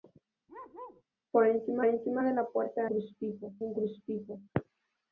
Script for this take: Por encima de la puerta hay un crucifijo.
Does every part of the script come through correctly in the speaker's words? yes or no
no